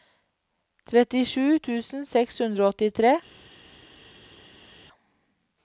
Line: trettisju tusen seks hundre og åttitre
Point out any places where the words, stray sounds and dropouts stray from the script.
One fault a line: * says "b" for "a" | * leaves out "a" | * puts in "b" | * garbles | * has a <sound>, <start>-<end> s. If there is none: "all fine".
all fine